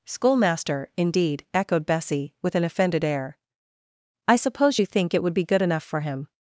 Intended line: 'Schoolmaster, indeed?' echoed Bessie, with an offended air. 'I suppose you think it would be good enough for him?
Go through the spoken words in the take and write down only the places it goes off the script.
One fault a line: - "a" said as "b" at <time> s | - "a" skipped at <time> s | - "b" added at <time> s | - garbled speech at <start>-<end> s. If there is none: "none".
none